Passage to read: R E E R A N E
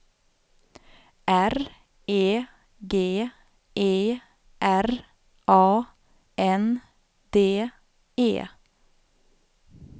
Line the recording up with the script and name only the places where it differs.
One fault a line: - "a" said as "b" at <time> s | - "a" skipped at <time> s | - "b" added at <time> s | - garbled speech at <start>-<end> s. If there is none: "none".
- "G" added at 2.9 s
- "D" added at 7.3 s